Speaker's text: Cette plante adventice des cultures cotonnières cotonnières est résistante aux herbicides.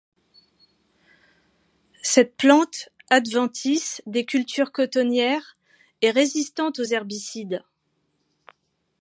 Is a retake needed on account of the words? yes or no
yes